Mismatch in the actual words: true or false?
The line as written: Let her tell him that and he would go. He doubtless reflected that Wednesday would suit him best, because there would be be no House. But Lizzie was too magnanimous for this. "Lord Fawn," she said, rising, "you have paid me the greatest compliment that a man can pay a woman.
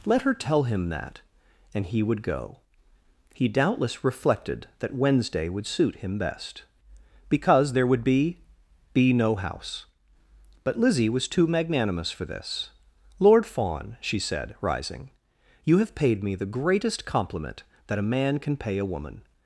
false